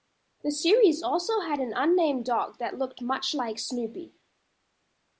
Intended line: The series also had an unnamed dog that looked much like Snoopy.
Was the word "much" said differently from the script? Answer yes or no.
no